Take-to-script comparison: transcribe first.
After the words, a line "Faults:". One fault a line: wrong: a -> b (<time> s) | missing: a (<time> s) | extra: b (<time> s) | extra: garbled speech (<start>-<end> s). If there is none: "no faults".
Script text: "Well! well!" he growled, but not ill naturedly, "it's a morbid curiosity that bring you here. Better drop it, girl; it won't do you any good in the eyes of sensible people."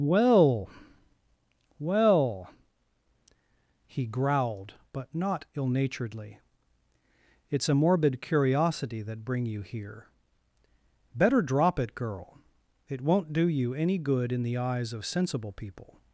"Well! well!" he growled, but not ill naturedly, "it's a morbid curiosity that bring you here. Better drop it, girl; it won't do you any good in the eyes of sensible people."
Faults:
no faults